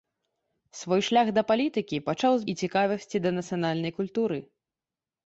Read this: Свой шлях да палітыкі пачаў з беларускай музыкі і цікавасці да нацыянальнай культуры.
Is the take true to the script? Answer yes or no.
no